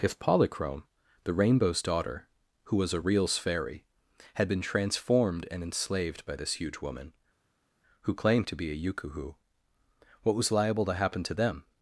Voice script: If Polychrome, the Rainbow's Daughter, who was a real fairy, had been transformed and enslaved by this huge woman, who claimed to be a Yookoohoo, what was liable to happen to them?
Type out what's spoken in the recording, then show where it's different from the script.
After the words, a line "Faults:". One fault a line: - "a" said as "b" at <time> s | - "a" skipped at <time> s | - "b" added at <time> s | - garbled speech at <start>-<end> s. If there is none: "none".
If Polychrome, the Rainbow's Daughter, who was a reals fairy, had been transformed and enslaved by this huge woman, who claimed to be a Yookoohoo, what was liable to happen to them?
Faults:
- "real" said as "reals" at 3.0 s